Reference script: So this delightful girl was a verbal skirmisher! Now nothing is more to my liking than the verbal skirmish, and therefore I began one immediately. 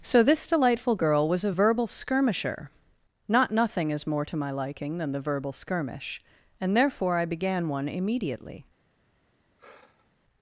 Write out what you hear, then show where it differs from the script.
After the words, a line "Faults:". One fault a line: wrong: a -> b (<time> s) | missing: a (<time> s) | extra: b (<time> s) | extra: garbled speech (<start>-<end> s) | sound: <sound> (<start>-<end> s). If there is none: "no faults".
So this delightful girl was a verbal skirmisher! Not nothing is more to my liking than the verbal skirmish, and therefore I began one immediately.
Faults:
wrong: Now -> Not (3.3 s)
sound: sigh (9.6-10.1 s)